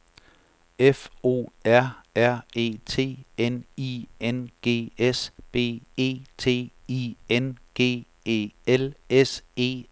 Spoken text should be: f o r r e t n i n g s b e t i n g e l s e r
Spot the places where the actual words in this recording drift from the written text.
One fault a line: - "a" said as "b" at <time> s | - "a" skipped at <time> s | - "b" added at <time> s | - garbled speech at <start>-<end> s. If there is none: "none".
none